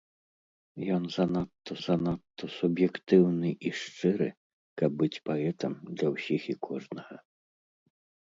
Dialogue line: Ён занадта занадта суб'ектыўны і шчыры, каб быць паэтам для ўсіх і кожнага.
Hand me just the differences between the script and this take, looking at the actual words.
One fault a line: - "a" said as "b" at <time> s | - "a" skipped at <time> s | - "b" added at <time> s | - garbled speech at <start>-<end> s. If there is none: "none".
none